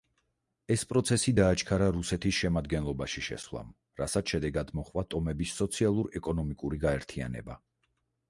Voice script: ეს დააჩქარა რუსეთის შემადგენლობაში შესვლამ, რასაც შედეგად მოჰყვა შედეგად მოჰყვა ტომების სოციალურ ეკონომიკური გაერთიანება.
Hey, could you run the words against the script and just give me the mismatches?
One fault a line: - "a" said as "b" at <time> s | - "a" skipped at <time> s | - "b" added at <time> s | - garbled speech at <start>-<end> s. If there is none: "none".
- "პროცესი" added at 0.9 s
- "შედეგად მოჰყვა" skipped at 5.0 s